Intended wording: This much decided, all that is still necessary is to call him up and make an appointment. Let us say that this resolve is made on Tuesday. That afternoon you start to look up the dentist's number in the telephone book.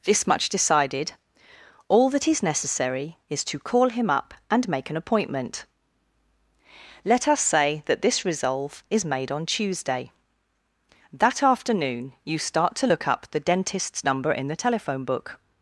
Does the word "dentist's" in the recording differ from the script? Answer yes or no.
no